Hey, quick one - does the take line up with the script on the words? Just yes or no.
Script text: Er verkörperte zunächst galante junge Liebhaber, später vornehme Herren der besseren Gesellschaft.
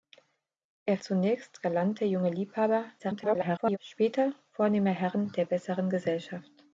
no